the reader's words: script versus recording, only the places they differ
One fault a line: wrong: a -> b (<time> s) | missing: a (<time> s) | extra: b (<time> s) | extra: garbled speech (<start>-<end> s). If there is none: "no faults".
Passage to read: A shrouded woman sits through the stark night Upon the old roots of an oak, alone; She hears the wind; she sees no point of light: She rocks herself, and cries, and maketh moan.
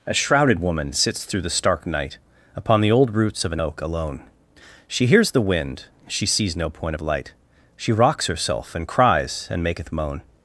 no faults